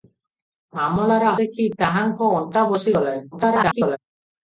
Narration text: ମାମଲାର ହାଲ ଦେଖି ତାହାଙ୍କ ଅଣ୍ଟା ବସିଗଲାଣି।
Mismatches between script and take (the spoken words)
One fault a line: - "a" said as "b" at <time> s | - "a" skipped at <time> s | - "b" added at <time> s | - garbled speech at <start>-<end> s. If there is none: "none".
- "ହାଲ" skipped at 1.3 s
- garbled speech at 3.3-4.0 s